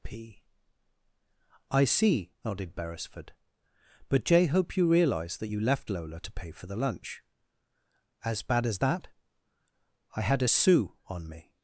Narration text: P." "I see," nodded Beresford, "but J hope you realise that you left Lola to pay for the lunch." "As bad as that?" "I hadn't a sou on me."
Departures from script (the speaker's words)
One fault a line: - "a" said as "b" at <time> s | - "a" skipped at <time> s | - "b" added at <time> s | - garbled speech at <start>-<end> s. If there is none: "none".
- "hadn't" said as "had" at 10.2 s